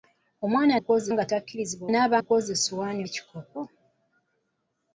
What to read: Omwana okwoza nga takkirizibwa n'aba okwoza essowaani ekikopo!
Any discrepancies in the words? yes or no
no